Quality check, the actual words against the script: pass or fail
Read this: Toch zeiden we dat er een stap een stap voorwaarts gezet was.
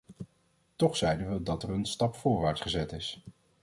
fail